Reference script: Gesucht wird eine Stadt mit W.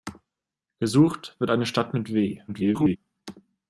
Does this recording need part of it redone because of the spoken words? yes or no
yes